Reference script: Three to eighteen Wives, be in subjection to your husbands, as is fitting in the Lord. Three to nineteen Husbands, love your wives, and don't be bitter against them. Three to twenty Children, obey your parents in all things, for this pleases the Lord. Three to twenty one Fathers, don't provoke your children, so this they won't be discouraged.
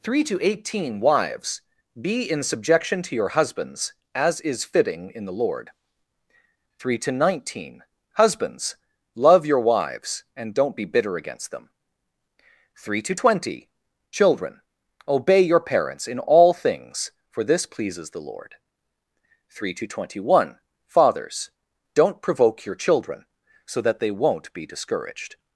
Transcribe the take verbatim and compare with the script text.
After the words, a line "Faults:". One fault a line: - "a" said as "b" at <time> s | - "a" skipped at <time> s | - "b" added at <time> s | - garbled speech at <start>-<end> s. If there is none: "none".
Three to eighteen Wives, be in subjection to your husbands, as is fitting in the Lord. Three to nineteen Husbands, love your wives, and don't be bitter against them. Three to twenty Children, obey your parents in all things, for this pleases the Lord. Three to twenty one Fathers, don't provoke your children, so that they won't be discouraged.
Faults:
- "this" said as "that" at 23.8 s